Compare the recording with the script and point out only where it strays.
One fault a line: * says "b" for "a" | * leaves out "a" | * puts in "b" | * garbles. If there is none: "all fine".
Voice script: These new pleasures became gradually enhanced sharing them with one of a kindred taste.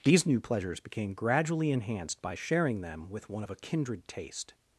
* puts in "by"